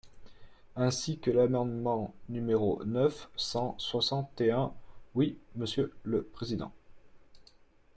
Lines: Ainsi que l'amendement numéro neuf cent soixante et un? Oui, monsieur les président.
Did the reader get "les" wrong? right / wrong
wrong